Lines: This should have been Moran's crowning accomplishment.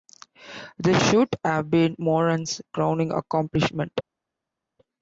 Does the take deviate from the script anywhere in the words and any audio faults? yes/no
no